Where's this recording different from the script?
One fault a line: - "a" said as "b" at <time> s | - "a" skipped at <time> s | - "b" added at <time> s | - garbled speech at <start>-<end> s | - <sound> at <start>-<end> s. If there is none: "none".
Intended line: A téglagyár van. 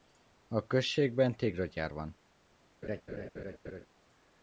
- "községben" added at 0.7 s
- laugh at 2.8-3.9 s